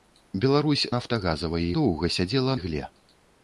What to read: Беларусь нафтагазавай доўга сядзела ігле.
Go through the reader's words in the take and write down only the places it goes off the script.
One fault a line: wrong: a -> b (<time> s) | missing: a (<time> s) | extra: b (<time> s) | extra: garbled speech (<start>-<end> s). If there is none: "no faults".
no faults